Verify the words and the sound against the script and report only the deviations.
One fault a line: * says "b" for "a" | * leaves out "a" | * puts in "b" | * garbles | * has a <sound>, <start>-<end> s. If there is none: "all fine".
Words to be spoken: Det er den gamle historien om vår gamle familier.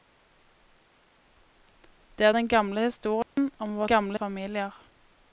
* has a dropout, 3.2-3.4 s